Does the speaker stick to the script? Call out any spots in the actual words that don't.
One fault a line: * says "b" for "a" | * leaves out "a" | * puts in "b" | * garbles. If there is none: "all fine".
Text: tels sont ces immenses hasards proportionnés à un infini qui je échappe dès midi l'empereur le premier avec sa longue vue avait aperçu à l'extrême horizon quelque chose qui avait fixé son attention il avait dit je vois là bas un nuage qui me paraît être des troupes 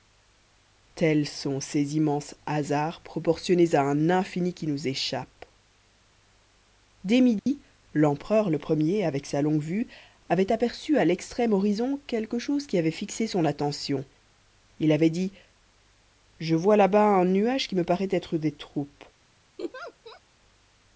* says "nous" for "je"